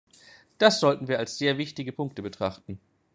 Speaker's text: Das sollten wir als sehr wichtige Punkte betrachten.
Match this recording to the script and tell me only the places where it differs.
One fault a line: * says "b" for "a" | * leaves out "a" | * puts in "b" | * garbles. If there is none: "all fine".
all fine